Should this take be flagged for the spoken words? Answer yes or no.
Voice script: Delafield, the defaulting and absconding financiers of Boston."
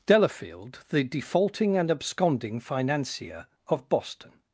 yes